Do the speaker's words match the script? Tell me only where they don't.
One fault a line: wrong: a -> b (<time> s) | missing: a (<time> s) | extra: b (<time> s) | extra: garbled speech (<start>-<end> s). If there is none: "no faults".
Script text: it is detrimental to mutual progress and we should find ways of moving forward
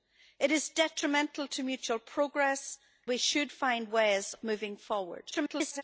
missing: and (2.8 s)
missing: of (4.3 s)
extra: garbled speech (5.3-5.8 s)